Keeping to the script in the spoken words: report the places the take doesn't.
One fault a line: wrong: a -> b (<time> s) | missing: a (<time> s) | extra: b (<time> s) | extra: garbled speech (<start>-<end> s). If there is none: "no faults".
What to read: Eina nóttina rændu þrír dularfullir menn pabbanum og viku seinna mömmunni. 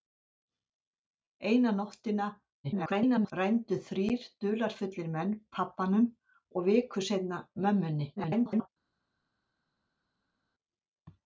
extra: garbled speech (2.6-3.3 s)
extra: garbled speech (8.2-8.7 s)